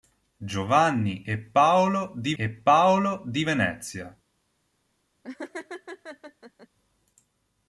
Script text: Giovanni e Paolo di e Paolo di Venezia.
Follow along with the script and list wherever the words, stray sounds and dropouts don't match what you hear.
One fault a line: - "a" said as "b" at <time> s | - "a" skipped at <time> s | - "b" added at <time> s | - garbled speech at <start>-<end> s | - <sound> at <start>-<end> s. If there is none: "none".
- laugh at 5.2-6.7 s